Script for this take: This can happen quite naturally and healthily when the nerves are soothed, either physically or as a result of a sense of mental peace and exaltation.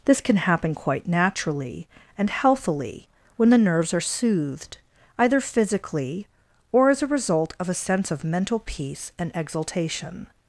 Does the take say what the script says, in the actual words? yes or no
yes